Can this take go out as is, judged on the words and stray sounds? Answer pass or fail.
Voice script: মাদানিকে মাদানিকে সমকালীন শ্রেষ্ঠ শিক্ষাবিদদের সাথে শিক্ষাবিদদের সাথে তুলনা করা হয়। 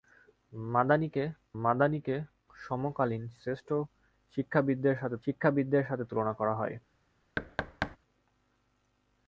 fail